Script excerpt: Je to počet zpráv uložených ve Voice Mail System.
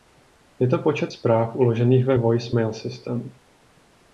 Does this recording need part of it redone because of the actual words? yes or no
no